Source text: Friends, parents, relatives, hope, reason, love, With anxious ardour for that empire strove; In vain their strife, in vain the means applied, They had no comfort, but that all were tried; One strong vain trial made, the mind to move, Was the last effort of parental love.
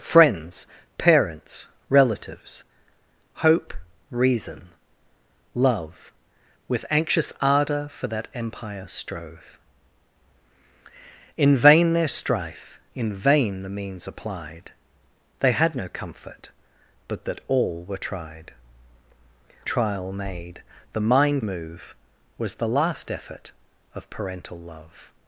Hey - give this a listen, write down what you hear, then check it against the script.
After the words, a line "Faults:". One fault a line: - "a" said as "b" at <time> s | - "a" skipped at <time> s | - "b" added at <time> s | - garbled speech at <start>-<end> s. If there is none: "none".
Friends, parents, relatives, hope, reason, love, With anxious ardour for that empire strove; In vain their strife, in vain the means applied, They had no comfort, but that all were tried; Trial made, the mind move, Was the last effort of parental love.
Faults:
- "One strong vain" skipped at 18.5 s
- "to" skipped at 21.4 s